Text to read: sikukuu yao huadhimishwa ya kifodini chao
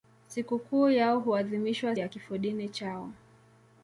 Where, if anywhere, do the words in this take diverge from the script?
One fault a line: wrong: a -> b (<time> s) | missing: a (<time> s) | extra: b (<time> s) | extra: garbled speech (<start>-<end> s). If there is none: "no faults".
no faults